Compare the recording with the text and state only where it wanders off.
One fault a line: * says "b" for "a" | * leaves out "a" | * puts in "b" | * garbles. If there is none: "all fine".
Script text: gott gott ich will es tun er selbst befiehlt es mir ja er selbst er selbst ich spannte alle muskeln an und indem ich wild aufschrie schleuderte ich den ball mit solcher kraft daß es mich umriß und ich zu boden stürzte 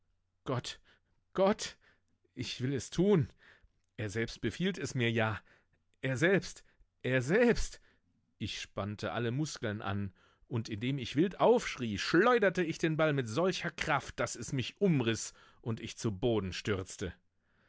all fine